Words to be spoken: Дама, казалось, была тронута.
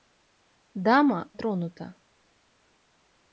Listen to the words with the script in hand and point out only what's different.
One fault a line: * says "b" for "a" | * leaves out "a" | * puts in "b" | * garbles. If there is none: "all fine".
* leaves out "казалось была"